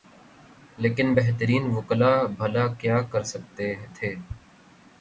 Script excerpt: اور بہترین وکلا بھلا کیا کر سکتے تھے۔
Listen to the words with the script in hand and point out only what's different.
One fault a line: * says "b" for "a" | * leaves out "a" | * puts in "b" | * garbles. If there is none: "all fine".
* says "لیکن" for "اور"